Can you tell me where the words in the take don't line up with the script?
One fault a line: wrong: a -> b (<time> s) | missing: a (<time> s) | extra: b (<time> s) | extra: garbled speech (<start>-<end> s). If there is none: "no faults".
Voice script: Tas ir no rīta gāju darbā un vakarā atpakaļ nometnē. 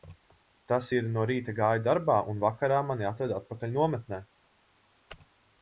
extra: mani atveda (2.9 s)